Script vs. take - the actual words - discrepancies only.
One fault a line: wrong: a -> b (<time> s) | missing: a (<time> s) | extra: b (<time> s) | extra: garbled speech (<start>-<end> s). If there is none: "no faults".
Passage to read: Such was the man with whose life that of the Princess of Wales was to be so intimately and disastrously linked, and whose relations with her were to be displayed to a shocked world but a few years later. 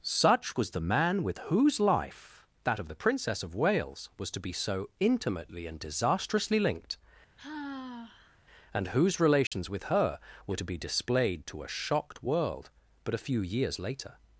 no faults